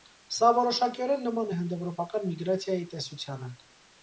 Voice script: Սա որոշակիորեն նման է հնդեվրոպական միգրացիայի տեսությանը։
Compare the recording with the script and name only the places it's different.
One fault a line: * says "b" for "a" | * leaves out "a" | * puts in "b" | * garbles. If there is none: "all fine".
all fine